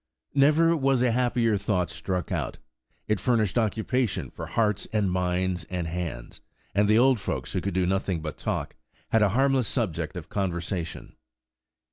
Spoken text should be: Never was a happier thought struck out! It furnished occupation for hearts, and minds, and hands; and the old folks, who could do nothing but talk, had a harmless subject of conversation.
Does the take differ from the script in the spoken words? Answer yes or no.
no